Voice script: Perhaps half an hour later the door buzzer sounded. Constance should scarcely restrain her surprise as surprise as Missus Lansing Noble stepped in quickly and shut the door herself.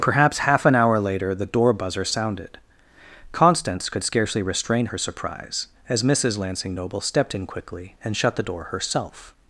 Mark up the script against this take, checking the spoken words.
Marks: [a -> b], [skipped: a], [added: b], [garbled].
Perhaps half an hour later the door buzzer sounded. Constance [should -> could] scarcely restrain her surprise as [skipped: surprise as] Missus Lansing Noble stepped in quickly and shut the door herself.